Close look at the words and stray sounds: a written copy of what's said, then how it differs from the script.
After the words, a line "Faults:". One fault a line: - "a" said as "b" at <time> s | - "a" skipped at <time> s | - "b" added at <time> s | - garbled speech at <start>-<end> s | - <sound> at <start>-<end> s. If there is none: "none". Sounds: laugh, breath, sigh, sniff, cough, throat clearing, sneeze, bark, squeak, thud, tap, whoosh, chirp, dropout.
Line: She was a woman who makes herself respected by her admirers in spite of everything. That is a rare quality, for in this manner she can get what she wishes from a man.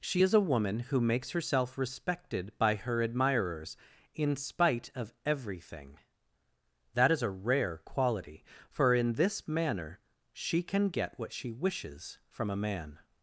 She is a woman who makes herself respected by her admirers in spite of everything. That is a rare quality, for in this manner she can get what she wishes from a man.
Faults:
- "was" said as "is" at 0.2 s